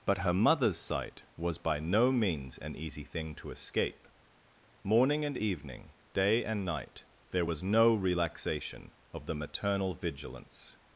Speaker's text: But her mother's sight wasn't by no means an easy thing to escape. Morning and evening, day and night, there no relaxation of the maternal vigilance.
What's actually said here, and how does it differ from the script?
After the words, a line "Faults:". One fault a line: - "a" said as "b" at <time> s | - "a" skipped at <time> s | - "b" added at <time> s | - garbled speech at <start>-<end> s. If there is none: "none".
But her mother's sight was by no means an easy thing to escape. Morning and evening, day and night, there was no relaxation of the maternal vigilance.
Faults:
- "wasn't" said as "was" at 1.4 s
- "was" added at 7.4 s